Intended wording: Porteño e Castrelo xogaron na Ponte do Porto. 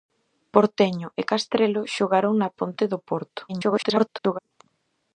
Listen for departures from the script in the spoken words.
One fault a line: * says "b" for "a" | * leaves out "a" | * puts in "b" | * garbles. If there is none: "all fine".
* garbles